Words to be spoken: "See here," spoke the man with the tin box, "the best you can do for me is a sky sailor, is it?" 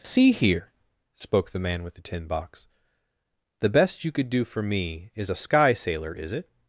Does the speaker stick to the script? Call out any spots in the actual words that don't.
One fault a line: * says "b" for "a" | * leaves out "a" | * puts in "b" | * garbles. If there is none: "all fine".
* says "could" for "can"